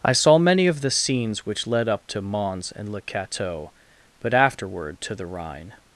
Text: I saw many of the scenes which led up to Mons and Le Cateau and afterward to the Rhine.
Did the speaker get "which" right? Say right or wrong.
right